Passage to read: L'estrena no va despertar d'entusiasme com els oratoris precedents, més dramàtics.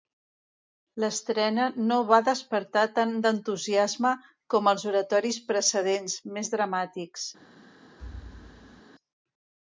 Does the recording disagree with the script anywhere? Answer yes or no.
yes